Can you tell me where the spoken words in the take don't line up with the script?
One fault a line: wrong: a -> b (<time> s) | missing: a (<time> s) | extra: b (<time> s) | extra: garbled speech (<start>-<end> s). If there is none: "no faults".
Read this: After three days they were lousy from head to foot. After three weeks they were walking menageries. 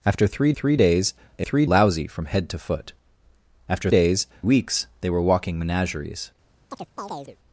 extra: three (0.5 s)
wrong: were -> three (1.4 s)
wrong: three -> days (3.9 s)